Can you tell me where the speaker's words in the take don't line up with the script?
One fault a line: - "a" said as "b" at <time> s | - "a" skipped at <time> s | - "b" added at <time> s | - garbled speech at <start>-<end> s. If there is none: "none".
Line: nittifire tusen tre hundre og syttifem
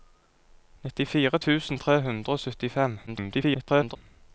- garbled speech at 3.1-4.0 s